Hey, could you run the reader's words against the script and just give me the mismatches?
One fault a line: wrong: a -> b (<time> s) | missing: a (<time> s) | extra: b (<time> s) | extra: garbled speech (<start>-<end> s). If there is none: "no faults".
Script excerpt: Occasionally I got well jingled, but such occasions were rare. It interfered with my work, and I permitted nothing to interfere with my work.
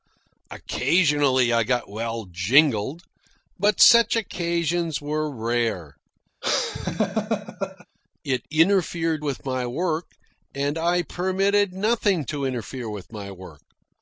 no faults